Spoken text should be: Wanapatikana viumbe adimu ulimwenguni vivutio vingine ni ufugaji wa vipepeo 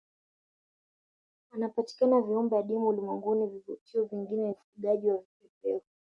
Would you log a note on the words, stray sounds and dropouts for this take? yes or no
yes